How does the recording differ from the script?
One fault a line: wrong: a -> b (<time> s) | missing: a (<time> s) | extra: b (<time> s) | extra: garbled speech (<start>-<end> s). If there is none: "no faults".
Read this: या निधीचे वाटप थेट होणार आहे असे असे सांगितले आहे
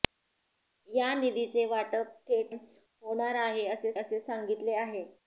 no faults